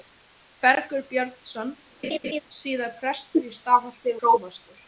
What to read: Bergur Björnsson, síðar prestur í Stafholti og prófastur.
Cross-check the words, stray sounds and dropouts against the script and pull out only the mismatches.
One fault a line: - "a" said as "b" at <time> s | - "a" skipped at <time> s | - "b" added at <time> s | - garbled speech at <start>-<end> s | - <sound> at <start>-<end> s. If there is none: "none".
- laugh at 2.0-2.4 s
- "og" skipped at 4.2 s